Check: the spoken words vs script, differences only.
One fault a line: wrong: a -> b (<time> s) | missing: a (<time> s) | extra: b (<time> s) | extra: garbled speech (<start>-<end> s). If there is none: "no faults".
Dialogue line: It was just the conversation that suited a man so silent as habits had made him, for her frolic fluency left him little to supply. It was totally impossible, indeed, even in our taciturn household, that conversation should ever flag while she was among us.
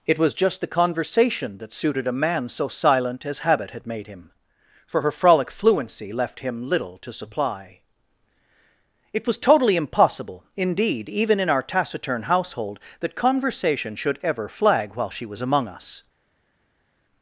wrong: habits -> habit (3.4 s)